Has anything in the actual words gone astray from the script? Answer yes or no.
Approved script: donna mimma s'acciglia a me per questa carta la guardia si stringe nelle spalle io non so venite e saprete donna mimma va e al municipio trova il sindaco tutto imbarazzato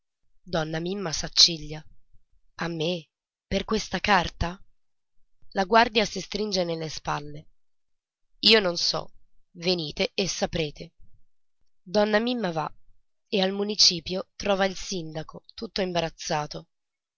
no